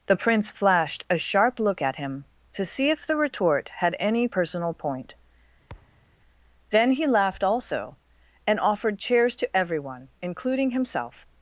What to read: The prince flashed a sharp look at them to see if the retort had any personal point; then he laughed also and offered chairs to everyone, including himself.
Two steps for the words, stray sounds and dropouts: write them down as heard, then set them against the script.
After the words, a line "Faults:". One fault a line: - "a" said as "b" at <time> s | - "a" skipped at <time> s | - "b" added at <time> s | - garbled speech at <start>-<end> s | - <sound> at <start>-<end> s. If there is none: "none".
The prince flashed a sharp look at him to see if the retort had any personal point; then he laughed also and offered chairs to everyone, including himself.
Faults:
- "them" said as "him" at 2.0 s
- thud at 5.7-6.1 s